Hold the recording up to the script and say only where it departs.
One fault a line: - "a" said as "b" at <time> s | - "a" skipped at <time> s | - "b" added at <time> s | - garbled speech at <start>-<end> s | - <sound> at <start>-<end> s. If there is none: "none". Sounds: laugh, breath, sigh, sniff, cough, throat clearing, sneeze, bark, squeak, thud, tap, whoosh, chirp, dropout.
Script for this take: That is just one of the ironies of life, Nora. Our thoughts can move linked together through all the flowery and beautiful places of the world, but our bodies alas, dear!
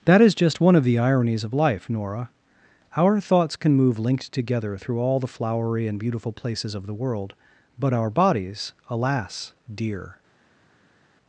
none